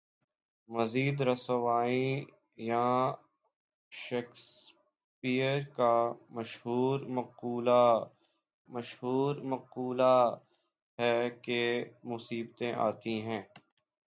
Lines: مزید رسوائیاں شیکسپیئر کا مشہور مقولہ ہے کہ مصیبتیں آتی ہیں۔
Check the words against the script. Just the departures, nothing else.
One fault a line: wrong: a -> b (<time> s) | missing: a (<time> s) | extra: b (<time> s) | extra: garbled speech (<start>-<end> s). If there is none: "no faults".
extra: مشہور مقولہ (8.7 s)